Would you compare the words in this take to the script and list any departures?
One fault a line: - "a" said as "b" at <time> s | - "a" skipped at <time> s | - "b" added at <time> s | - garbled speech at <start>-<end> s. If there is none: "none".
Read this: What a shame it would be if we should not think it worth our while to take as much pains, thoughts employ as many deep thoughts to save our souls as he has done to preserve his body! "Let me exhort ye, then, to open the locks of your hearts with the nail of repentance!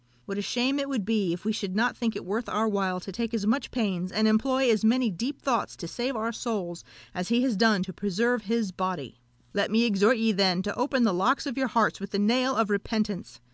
- "thoughts" said as "and" at 4.1 s